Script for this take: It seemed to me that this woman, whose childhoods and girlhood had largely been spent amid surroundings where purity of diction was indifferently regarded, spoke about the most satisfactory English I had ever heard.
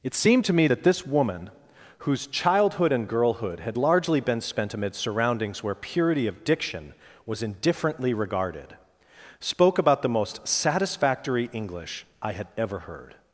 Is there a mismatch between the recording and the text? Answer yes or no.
yes